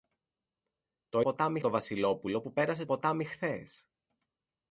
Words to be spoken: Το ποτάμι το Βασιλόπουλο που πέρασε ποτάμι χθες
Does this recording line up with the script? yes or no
yes